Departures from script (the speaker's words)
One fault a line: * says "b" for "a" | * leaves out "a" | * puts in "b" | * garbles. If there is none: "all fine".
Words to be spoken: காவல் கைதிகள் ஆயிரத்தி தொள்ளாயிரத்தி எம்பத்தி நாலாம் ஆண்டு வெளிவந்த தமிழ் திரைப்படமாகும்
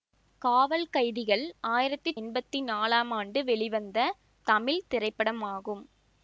* leaves out "தொள்ளாயிரத்தி"